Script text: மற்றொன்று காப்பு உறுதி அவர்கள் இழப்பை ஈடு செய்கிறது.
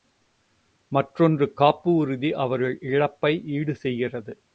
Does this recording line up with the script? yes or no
yes